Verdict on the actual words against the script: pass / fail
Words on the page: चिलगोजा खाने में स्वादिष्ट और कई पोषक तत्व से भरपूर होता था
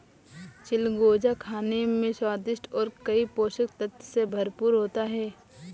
fail